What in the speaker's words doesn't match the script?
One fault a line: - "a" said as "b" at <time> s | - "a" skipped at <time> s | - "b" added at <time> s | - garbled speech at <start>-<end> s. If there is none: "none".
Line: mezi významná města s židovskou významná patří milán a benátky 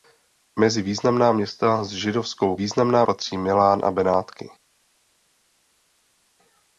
none